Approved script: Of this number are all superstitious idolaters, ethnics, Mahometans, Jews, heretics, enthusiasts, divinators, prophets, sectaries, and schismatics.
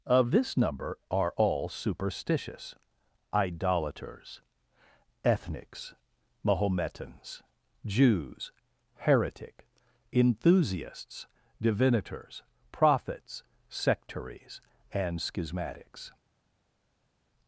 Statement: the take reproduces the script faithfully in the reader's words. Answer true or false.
false